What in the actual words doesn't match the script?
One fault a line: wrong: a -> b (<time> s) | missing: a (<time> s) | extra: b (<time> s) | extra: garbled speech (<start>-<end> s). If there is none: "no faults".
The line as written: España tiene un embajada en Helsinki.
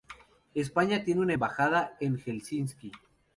wrong: un -> una (1.2 s)